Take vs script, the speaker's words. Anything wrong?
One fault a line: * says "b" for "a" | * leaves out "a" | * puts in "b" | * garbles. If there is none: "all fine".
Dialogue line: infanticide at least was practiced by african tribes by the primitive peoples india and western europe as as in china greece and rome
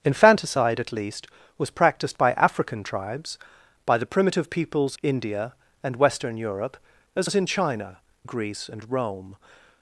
all fine